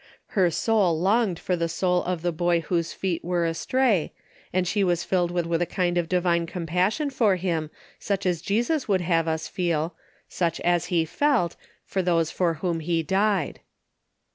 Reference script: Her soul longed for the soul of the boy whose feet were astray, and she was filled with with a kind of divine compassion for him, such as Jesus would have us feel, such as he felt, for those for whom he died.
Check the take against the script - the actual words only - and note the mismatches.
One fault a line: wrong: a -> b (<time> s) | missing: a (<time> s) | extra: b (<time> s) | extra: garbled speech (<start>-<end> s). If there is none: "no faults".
no faults